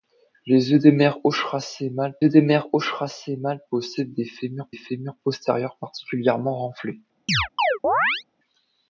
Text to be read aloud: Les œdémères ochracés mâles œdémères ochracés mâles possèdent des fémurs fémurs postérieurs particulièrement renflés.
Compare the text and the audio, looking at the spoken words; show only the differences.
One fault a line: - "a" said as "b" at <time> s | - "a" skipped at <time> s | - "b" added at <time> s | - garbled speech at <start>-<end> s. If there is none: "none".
none